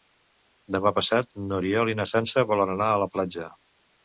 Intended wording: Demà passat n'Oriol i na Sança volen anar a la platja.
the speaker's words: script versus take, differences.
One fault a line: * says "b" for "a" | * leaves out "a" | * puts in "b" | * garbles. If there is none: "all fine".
all fine